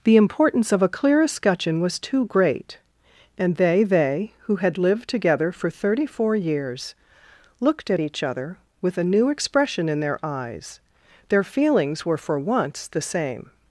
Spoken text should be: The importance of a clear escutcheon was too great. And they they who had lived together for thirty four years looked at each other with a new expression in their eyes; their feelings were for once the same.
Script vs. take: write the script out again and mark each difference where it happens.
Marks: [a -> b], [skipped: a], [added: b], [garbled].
The importance of a clear escutcheon was too great. And they they who had lived together for thirty four years looked at each other with a new expression in their eyes; their feelings were for once the same.